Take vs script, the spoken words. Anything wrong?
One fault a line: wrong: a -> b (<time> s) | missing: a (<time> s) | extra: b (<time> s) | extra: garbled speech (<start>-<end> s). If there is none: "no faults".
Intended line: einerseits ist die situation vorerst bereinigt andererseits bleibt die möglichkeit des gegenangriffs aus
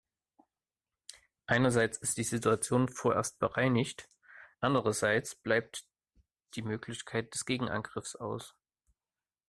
no faults